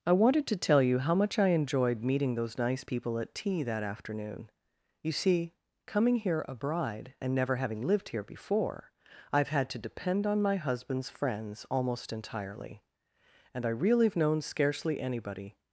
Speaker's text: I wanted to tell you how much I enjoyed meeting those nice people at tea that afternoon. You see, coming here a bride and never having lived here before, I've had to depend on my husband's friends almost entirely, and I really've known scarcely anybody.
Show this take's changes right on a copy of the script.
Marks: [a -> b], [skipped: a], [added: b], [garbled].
I wanted to tell you how much I enjoyed meeting those nice people at tea that afternoon. You see, coming here a bride and never having lived here before, I've had to depend on my husband's friends almost entirely, and I really've known scarcely anybody.